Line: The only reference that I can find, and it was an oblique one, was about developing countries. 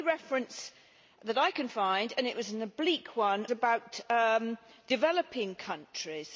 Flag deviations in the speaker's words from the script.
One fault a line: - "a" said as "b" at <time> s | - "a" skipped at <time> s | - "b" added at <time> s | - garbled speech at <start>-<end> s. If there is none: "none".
- "was" skipped at 3.5 s